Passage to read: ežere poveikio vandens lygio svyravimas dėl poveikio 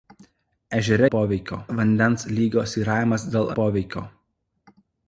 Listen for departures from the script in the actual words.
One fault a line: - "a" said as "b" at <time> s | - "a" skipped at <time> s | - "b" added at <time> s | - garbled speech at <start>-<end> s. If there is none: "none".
none